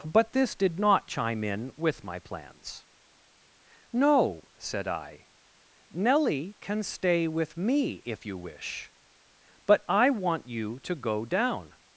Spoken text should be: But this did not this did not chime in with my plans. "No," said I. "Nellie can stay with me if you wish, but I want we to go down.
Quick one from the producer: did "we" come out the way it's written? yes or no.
no